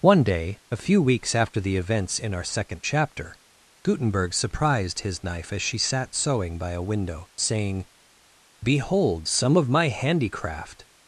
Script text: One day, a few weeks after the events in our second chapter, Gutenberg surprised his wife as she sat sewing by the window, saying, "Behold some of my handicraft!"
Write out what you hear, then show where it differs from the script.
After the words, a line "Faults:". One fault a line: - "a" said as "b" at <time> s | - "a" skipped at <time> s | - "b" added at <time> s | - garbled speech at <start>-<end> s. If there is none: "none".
One day, a few weeks after the events in our second chapter, Gutenberg surprised his knife as she sat sewing by a window, saying, "Behold some of my handicraft!"
Faults:
- "wife" said as "knife" at 5.2 s
- "the" said as "a" at 6.7 s